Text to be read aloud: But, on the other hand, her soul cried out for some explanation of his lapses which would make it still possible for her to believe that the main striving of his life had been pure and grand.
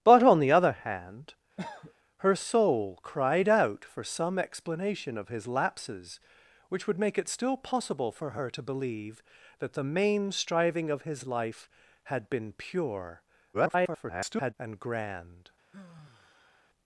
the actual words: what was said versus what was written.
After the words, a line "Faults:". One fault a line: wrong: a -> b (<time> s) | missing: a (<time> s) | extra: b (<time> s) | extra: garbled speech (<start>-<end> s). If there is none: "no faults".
But, on the other hand, her soul cried out for some explanation of his lapses which would make it still possible for her to believe that the main striving of his life had been pure [garbled] and grand.
Faults:
extra: garbled speech (13.5-14.5 s)